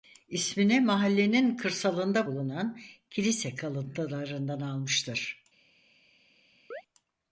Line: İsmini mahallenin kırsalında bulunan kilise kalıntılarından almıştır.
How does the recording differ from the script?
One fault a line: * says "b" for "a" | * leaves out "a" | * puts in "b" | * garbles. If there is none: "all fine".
all fine